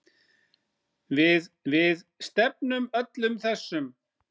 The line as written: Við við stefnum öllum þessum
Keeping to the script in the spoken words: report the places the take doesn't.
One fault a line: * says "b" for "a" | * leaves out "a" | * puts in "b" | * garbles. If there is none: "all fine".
all fine